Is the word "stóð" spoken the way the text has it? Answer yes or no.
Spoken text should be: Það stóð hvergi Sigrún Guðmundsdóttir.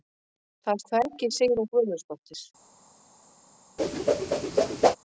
no